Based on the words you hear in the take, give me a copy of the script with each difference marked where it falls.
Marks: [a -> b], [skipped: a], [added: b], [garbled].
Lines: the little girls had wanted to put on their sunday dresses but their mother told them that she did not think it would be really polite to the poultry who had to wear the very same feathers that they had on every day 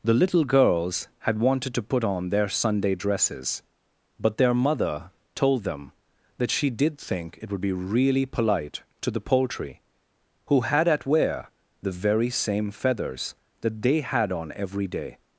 the little girls had wanted to put on their sunday dresses but their mother told them that she did [skipped: not] think it would be really polite to the poultry who had [to -> at] wear the very same feathers that they had on every day